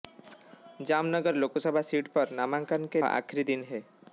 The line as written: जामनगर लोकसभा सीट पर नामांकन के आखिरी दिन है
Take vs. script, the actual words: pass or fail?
pass